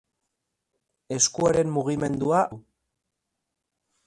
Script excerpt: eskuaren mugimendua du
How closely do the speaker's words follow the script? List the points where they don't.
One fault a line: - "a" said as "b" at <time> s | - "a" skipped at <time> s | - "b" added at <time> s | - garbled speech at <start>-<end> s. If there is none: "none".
none